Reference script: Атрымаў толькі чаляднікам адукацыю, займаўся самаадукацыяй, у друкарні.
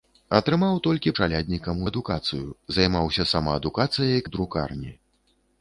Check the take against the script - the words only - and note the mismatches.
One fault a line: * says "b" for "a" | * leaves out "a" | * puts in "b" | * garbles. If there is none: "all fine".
all fine